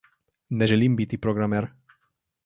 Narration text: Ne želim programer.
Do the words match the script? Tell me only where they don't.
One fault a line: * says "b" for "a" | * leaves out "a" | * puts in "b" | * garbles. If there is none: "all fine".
* puts in "biti"